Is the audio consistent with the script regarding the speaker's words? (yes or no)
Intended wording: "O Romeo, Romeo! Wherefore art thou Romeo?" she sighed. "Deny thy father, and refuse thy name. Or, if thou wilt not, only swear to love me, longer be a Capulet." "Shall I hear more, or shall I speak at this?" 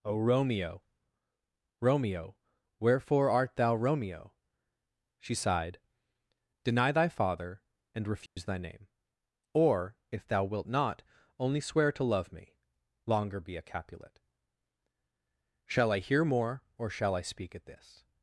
yes